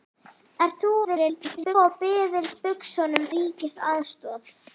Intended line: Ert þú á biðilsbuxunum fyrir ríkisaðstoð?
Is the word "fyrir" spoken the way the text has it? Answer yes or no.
no